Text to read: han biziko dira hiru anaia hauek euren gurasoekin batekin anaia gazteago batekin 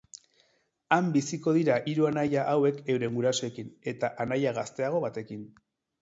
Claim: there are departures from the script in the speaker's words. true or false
true